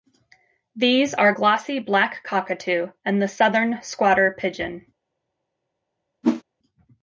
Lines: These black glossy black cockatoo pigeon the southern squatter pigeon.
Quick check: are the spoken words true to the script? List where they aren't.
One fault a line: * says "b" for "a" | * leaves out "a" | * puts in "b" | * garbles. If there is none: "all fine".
* says "are" for "black"
* says "and" for "pigeon"